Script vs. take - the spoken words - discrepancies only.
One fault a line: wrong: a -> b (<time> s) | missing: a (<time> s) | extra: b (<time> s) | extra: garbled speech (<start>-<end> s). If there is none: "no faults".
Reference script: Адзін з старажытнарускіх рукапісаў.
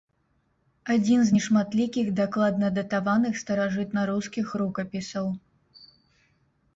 extra: нешматлікіх дакладна датаваных (1.3 s)